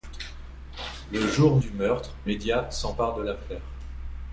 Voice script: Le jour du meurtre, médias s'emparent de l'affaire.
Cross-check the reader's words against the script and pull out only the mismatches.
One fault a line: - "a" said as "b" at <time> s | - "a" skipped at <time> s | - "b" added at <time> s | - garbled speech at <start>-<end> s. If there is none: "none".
none